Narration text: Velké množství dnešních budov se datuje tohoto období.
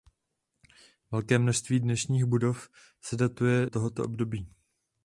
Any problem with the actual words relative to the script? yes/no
no